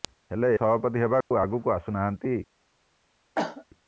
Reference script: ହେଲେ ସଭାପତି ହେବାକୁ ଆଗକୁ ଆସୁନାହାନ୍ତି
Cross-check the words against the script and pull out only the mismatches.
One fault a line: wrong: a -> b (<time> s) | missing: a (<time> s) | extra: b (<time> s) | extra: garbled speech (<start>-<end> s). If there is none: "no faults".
no faults